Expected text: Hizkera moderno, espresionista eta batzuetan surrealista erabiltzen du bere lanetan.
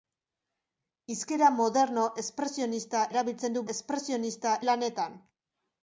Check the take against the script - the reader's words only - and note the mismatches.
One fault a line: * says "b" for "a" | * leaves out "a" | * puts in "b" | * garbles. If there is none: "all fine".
* leaves out "eta batzuetan surrealista"
* says "espresionista" for "bere"